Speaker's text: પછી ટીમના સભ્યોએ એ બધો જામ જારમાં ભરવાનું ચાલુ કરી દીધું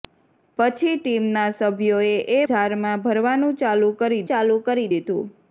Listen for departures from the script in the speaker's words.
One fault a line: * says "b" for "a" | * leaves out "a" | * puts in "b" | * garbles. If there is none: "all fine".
* says "જારમાં ભરવાનું ચાલુ કરી" for "બધો જામ જારમાં ભરવાનું"